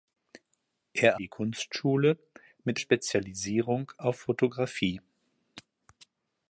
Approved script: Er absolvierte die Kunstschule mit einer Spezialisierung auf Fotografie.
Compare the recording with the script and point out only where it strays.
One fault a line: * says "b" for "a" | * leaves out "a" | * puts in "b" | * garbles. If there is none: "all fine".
* leaves out "absolvierte"
* leaves out "einer"